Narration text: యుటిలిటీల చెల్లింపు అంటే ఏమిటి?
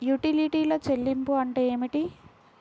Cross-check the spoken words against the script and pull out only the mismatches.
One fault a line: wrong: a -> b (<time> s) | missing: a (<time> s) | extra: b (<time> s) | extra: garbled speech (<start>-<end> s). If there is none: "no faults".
no faults